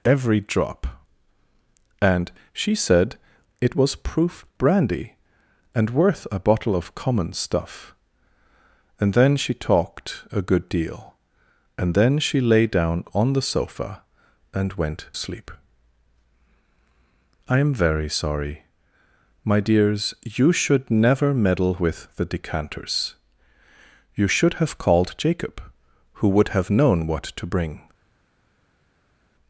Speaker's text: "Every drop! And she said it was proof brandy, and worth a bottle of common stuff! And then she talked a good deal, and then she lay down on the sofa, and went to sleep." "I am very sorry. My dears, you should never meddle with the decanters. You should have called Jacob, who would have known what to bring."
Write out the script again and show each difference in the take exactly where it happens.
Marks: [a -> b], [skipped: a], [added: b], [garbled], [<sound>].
"Every drop! And she said it was proof brandy, and worth a bottle of common stuff! And then she talked a good deal, and then she lay down on the sofa, and went [skipped: to] sleep." "I am very sorry. My dears, you should never meddle with the decanters. You should have called Jacob, who would have known what to bring."